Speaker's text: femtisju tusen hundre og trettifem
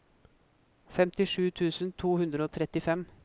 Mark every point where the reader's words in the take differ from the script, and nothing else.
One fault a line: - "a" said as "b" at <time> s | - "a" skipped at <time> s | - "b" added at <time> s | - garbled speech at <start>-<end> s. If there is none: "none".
- "to" added at 2.0 s